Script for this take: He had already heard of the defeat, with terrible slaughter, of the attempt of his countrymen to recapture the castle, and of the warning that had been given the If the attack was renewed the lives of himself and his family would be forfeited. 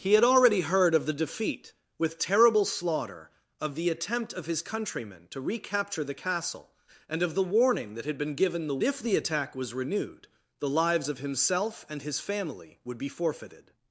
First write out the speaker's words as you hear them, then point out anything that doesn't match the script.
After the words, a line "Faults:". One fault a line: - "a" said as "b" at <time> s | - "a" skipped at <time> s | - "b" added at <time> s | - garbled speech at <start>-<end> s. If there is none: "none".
He had already heard of the defeat, with terrible slaughter, of the attempt of his countrymen to recapture the castle, and of the warning that had been given the If the attack was renewed the lives of himself and his family would be forfeited.
Faults:
none